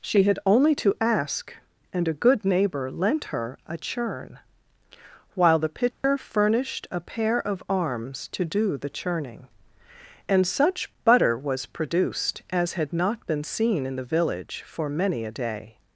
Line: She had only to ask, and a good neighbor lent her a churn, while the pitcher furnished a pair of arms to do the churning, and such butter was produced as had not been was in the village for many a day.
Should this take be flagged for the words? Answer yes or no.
yes